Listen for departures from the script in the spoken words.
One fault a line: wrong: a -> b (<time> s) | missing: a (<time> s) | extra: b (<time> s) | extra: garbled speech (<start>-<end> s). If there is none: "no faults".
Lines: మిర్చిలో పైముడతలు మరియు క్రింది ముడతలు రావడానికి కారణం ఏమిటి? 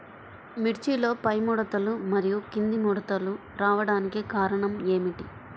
no faults